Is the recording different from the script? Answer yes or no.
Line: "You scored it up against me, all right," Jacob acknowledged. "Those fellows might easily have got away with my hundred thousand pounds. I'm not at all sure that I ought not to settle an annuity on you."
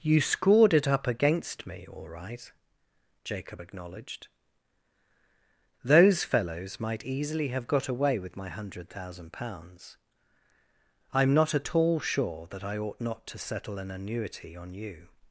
no